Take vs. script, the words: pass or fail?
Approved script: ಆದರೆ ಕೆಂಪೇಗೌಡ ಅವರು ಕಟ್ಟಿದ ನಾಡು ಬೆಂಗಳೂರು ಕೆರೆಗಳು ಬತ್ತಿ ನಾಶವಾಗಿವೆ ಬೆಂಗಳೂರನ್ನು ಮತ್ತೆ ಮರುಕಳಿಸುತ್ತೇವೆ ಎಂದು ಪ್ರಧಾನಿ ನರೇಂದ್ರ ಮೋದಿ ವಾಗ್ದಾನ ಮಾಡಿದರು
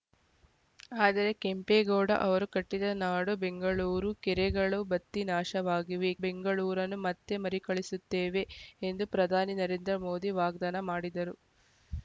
pass